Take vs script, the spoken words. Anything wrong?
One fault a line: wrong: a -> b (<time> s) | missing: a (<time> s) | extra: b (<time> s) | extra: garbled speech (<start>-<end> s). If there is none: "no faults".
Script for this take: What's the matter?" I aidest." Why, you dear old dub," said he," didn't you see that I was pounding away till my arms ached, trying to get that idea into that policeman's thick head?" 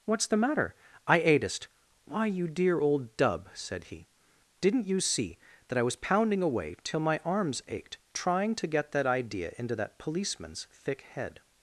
no faults